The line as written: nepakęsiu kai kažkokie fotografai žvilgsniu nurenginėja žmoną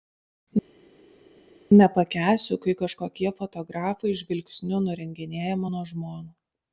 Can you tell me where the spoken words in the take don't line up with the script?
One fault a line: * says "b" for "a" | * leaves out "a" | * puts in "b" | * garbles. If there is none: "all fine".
* puts in "mano"